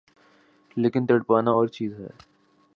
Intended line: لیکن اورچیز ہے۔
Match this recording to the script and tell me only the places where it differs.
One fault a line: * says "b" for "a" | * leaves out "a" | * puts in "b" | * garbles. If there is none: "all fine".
* puts in "تڑپنا"